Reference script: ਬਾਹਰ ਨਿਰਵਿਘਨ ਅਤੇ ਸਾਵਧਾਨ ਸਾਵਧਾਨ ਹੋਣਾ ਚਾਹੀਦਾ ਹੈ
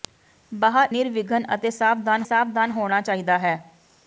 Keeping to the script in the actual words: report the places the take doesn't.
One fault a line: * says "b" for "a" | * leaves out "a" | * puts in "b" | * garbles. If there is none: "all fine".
all fine